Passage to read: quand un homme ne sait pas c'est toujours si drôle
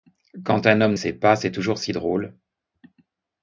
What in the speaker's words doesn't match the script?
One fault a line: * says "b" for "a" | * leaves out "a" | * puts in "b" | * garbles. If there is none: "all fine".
* leaves out "ne"